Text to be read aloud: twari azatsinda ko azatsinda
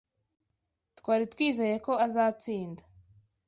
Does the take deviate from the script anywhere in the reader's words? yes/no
yes